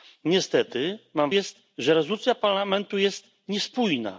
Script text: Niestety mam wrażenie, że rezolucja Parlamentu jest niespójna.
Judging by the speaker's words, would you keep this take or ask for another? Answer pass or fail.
fail